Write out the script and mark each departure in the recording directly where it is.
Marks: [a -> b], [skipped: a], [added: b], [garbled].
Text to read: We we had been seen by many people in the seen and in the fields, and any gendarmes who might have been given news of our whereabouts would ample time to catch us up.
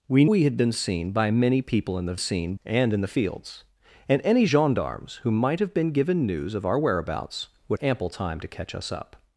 We we had been seen by many people in the seen and in the fields, and any gendarmes who might have been given news of our whereabouts would ample time to catch us up.